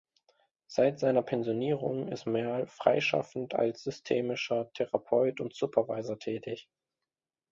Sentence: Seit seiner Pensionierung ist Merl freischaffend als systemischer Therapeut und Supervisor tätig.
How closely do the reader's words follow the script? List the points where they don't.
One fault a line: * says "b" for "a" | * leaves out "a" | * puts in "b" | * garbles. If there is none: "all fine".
all fine